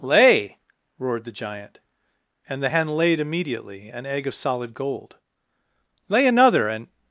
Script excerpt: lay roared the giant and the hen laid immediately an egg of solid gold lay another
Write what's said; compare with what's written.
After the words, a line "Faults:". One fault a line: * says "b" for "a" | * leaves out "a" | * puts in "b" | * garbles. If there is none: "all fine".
lay roared the giant and the hen laid immediately an egg of solid gold lay another and
Faults:
* puts in "and"